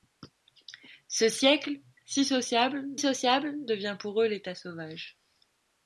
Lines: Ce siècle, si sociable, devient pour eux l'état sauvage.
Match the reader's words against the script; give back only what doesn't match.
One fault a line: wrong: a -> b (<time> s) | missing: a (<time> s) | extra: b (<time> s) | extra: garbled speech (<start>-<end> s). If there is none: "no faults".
extra: sociable (3.0 s)